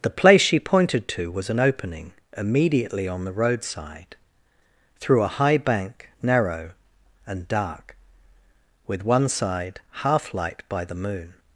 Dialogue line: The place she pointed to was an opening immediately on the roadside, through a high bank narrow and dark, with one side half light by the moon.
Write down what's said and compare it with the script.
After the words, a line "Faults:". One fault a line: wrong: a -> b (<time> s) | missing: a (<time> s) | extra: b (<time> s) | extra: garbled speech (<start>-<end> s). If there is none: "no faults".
The place she pointed to was an opening immediately on the roadside, through a high bank narrow and dark, with one side half light by the moon.
Faults:
no faults